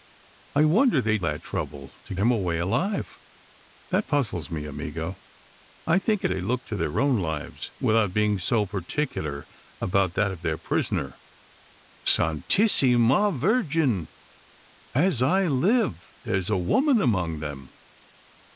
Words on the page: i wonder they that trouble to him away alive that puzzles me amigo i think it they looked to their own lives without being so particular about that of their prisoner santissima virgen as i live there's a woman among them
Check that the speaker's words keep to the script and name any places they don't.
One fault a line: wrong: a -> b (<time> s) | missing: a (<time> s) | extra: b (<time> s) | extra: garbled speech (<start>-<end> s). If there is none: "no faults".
no faults